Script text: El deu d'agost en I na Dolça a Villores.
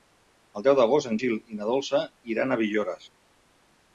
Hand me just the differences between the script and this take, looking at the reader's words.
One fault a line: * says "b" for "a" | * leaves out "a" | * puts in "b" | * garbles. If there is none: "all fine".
* puts in "Gil"
* puts in "iran"